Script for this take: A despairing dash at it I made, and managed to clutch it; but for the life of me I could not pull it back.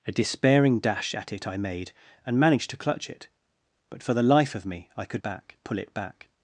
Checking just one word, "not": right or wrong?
wrong